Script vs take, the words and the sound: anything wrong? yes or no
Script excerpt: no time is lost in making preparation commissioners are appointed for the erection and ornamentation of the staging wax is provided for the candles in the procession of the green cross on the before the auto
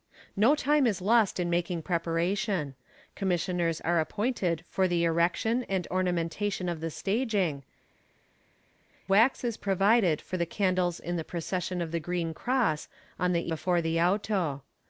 no